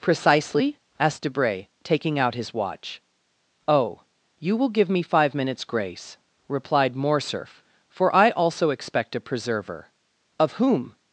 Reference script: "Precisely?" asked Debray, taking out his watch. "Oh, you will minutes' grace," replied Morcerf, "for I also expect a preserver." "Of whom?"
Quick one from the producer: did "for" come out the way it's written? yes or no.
yes